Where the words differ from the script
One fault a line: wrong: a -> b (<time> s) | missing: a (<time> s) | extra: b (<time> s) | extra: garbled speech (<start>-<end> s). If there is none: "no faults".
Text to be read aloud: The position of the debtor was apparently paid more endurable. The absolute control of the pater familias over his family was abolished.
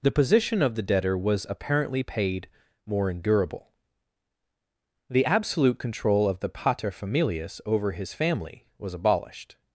no faults